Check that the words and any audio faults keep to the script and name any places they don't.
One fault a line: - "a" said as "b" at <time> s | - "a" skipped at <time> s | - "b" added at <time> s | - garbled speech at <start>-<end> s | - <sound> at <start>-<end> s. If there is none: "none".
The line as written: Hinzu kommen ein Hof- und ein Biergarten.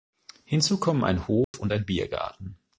- dropout at 1.4-1.5 s